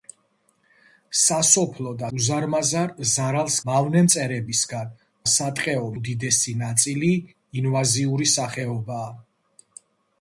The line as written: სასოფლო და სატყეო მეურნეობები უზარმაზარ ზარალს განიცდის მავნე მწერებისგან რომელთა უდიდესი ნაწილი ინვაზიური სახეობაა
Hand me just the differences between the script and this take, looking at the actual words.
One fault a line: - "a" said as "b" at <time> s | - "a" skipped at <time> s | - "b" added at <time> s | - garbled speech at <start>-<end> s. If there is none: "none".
- "სატყეო მეურნეობები" skipped at 2.1 s
- "განიცდის" skipped at 3.6 s
- "რომელთა" said as "სატყეო" at 5.3 s